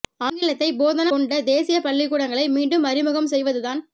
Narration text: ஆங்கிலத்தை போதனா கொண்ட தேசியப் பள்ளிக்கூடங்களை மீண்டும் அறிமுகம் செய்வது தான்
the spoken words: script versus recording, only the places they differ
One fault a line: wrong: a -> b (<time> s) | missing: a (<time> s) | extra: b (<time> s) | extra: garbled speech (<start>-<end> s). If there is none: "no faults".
no faults